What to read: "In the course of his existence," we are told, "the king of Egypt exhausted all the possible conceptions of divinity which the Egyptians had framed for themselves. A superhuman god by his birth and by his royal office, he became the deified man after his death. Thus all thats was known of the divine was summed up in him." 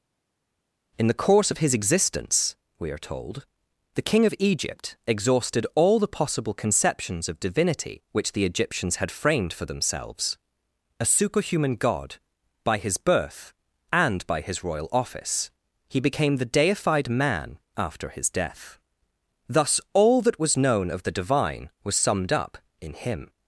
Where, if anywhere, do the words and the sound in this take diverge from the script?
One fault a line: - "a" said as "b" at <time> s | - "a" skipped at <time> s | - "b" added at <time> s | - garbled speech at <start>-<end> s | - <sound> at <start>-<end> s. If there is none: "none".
- "thats" said as "that" at 20.2 s